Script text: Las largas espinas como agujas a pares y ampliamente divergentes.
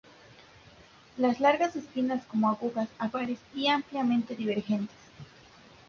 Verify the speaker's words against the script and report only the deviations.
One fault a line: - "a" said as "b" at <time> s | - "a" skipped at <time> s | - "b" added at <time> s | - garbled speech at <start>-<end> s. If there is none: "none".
none